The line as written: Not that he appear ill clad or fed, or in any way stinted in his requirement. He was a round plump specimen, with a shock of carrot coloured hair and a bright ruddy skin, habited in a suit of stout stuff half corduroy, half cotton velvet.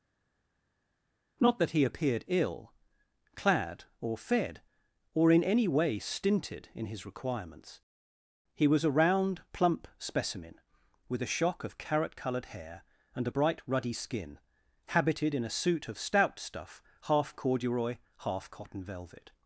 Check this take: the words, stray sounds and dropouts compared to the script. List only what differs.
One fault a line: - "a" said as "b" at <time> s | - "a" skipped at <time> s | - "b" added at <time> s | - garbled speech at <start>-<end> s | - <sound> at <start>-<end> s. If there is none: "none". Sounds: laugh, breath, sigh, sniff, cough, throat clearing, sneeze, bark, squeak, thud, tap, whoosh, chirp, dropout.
- "appear" said as "appeared" at 1.8 s
- "requirement" said as "requirements" at 7.0 s